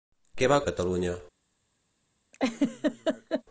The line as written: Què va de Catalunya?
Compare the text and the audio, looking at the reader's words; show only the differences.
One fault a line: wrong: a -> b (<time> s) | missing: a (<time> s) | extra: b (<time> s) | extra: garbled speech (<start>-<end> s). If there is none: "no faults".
no faults